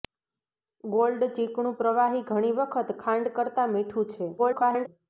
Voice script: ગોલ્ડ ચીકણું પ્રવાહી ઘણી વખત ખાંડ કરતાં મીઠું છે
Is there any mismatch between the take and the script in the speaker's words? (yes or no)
yes